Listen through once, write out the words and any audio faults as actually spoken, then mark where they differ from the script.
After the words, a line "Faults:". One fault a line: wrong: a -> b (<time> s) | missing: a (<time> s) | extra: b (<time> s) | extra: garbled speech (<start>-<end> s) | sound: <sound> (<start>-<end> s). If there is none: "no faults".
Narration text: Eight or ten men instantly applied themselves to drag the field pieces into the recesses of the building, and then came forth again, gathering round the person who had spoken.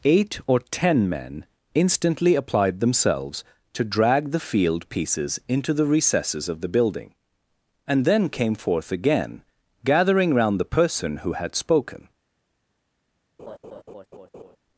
Eight or ten men instantly applied themselves to drag the field pieces into the recesses of the building, and then came forth again, gathering round the person who had spoken.
Faults:
sound: laugh (13.4-14.6 s)